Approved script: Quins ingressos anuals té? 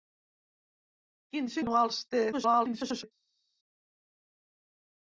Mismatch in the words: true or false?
true